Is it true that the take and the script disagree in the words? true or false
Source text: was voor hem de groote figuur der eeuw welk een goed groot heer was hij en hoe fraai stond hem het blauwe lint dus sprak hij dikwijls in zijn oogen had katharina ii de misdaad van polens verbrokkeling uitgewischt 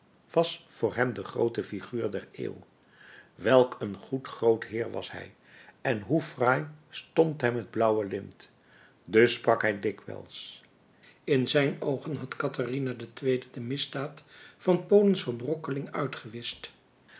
false